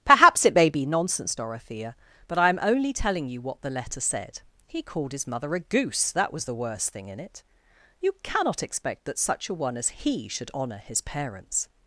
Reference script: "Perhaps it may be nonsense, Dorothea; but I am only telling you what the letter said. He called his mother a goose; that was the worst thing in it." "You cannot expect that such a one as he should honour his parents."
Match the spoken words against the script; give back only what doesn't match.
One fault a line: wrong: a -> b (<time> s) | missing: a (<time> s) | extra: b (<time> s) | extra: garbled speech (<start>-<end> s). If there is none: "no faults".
no faults